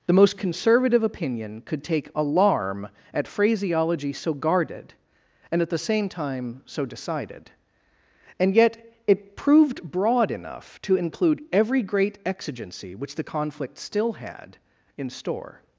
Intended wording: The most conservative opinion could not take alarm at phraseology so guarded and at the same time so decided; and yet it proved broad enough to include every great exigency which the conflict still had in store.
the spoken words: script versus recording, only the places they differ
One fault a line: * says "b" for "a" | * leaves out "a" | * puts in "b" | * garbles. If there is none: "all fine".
* leaves out "not"